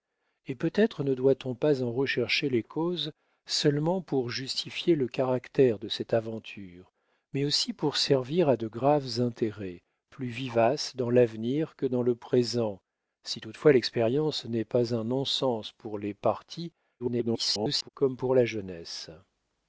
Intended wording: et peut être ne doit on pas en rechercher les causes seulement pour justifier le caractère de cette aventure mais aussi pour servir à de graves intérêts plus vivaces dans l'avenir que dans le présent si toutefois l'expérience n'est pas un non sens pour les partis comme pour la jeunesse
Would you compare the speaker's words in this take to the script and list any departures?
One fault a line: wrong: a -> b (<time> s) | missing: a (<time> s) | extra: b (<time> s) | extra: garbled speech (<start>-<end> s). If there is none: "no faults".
extra: garbled speech (17.0-17.9 s)